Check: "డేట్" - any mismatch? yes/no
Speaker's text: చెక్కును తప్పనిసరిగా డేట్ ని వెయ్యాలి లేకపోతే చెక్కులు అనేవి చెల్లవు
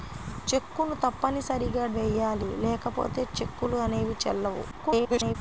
yes